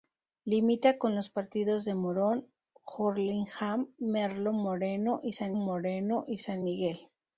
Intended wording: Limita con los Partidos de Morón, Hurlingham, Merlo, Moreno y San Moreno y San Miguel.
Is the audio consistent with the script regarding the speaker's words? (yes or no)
yes